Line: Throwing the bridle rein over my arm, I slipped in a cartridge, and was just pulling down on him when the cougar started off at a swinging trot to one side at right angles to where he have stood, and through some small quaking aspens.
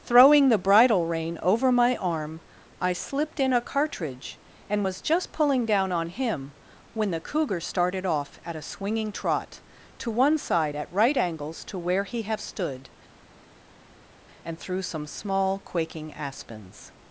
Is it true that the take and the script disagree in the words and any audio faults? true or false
false